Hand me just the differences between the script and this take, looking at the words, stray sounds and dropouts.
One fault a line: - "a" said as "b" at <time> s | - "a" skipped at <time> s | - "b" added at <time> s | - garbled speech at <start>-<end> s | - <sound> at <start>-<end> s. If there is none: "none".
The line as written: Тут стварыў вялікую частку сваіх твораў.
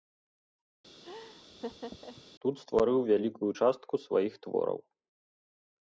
- laugh at 1.0-2.2 s